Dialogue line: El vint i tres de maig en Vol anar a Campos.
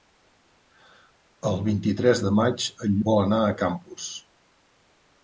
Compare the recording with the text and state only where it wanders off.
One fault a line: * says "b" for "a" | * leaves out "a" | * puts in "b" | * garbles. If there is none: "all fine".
all fine